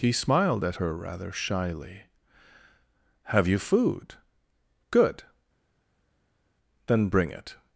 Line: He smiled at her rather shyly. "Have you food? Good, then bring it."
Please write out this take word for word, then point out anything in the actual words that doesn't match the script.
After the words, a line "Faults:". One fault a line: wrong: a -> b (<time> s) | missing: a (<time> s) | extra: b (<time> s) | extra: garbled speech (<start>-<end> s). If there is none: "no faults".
He smiled at her rather shyly. "Have you food? Good, then bring it."
Faults:
no faults